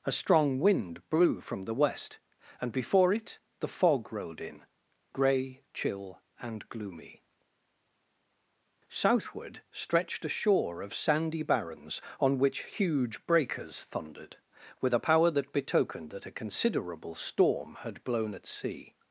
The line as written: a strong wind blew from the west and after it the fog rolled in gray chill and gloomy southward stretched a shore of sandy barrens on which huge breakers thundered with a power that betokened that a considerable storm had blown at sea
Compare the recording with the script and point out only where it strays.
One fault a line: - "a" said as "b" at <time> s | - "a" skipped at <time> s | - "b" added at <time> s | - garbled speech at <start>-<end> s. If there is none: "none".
- "after" said as "before" at 2.7 s